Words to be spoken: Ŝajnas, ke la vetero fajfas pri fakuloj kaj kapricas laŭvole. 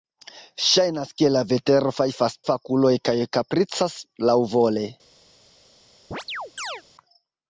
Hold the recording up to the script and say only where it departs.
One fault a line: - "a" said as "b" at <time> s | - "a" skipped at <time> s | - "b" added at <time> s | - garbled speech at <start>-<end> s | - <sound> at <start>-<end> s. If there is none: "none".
- "pri" skipped at 2.4 s
- chirp at 6.1-6.8 s